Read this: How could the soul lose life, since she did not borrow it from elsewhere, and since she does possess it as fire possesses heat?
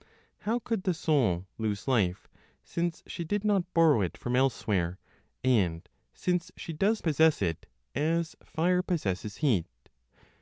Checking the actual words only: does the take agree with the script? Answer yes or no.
yes